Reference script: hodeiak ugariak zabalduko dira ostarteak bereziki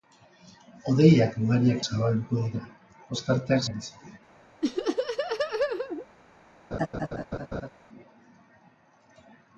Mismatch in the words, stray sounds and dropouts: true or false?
true